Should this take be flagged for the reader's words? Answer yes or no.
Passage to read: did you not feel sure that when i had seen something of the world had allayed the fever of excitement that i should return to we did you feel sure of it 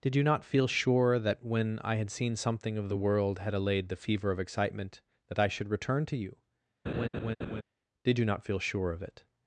yes